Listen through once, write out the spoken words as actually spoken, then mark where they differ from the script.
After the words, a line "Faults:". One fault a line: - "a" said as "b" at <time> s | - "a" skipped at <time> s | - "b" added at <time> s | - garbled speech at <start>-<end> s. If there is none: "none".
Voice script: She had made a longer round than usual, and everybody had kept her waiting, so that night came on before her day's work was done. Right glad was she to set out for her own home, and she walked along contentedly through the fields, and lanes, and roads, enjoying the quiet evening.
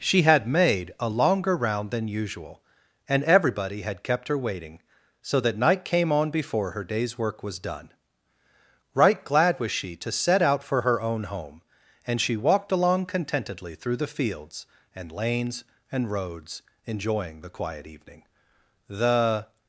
She had made a longer round than usual, and everybody had kept her waiting, so that night came on before her day's work was done. Right glad was she to set out for her own home, and she walked along contentedly through the fields, and lanes, and roads, enjoying the quiet evening. The
Faults:
- "The" added at 18.9 s